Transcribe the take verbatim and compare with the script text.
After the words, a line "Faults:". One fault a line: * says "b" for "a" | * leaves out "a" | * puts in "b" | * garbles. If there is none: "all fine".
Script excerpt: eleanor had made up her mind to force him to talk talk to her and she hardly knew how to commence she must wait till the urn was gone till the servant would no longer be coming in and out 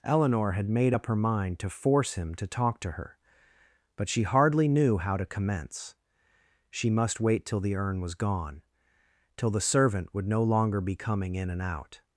eleanor had made up her mind to force him to talk to her but she hardly knew how to commence she must wait till the urn was gone till the servant would no longer be coming in and out
Faults:
* leaves out "talk"
* says "but" for "and"